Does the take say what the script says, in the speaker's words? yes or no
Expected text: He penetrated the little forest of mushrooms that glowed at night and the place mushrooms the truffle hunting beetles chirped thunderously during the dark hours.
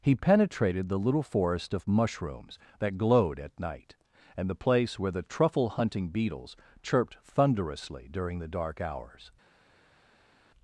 no